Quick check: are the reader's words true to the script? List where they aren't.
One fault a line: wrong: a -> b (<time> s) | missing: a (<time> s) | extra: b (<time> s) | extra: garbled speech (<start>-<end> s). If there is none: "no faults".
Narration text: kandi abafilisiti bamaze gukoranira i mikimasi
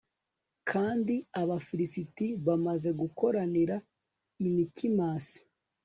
no faults